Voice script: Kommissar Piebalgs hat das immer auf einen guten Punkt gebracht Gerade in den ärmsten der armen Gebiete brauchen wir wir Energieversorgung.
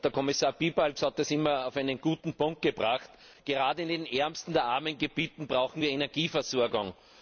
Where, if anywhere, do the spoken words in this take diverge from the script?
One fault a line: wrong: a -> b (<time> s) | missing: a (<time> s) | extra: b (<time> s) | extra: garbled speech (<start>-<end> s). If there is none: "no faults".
missing: wir (5.9 s)